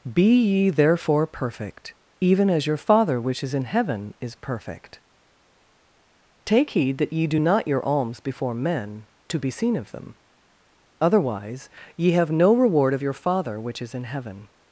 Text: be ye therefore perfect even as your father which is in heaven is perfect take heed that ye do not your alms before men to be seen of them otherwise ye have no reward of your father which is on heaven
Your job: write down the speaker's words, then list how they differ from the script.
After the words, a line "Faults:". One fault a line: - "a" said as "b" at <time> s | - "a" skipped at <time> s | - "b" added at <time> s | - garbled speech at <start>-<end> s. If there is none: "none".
be ye therefore perfect even as your father which is in heaven is perfect take heed that ye do not your alms before men to be seen of them otherwise ye have no reward of your father which is in heaven
Faults:
- "on" said as "in" at 13.9 s